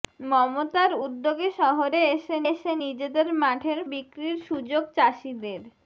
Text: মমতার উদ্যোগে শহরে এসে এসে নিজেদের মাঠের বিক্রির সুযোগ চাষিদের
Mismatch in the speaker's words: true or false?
false